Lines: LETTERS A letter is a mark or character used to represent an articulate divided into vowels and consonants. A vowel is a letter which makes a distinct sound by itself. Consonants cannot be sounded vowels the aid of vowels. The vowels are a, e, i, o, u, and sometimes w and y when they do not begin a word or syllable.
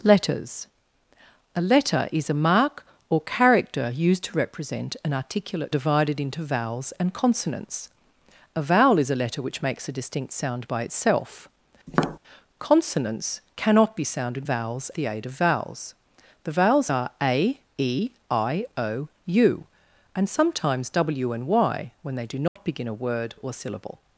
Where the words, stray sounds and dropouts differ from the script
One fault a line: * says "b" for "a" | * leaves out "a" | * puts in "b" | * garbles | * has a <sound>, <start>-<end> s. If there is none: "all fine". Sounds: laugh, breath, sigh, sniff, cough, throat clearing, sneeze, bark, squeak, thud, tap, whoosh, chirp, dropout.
* has a tap, 11.9-12.2 s
* has a dropout, 22.5-22.6 s